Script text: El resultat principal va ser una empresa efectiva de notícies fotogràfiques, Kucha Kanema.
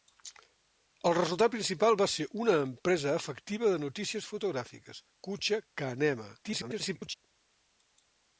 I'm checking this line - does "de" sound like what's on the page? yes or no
yes